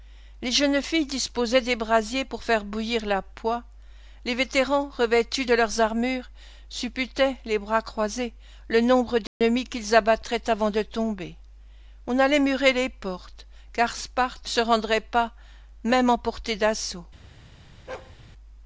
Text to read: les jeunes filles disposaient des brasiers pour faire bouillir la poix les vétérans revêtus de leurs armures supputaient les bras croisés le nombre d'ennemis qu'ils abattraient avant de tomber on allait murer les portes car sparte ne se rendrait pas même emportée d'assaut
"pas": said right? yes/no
yes